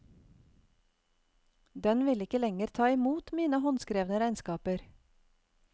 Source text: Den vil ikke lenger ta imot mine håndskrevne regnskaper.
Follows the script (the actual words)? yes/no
yes